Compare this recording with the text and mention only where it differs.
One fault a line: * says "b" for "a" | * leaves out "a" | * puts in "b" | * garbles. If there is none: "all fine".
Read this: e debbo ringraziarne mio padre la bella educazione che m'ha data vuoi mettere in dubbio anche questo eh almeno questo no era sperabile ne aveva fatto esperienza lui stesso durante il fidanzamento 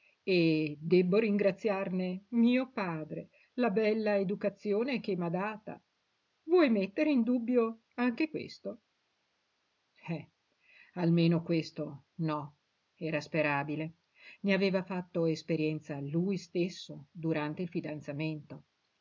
all fine